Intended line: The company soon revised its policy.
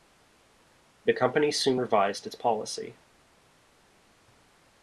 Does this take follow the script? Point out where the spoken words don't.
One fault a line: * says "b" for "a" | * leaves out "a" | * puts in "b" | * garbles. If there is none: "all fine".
all fine